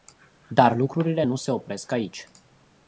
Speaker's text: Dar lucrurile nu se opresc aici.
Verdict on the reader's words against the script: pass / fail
pass